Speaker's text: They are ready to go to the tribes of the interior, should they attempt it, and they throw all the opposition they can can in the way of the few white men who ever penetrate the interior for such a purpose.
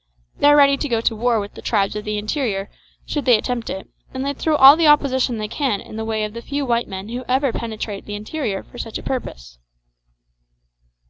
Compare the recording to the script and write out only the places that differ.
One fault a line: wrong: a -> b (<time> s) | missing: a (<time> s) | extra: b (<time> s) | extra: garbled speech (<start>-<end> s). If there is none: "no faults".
extra: war with (1.1 s)
missing: can (5.8 s)